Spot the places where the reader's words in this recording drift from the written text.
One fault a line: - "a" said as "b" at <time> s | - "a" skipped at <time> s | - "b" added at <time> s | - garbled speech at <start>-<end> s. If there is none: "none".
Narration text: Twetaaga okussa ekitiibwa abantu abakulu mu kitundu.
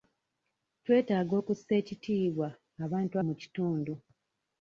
- "abakulu" skipped at 3.1 s